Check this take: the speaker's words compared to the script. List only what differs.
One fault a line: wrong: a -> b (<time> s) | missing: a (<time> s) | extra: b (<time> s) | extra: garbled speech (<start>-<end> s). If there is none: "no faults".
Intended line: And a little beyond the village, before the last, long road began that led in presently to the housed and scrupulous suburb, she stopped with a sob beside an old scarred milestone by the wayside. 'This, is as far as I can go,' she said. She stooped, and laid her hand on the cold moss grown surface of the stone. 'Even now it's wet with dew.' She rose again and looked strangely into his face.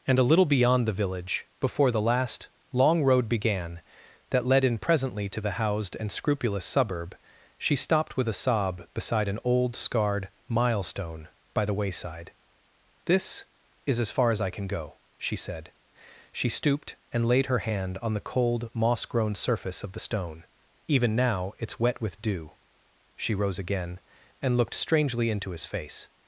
no faults